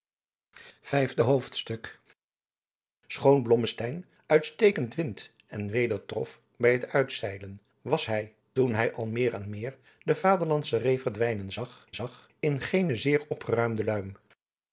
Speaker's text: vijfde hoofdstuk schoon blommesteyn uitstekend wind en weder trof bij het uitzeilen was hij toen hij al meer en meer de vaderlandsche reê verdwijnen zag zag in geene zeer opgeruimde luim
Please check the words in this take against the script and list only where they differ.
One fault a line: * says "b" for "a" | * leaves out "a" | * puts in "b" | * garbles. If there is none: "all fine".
all fine